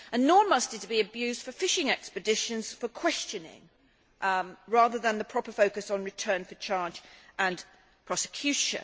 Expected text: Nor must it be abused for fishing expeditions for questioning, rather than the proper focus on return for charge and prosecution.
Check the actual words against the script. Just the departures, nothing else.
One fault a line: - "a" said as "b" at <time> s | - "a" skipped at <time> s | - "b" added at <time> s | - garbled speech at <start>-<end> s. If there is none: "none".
none